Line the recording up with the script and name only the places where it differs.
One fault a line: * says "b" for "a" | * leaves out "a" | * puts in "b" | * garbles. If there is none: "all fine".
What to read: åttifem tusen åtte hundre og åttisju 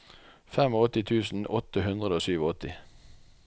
all fine